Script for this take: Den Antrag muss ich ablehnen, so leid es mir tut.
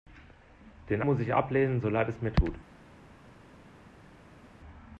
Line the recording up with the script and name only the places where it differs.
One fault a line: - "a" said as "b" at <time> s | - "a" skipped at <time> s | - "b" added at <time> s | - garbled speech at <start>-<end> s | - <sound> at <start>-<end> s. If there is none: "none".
- "Antrag" skipped at 1.0 s